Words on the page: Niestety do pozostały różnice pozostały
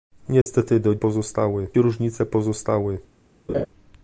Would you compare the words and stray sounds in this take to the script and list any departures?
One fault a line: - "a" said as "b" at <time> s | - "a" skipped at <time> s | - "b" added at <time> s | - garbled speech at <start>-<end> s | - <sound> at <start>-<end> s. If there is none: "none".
- dropout at 0.4-0.5 s
- laugh at 3.5-3.7 s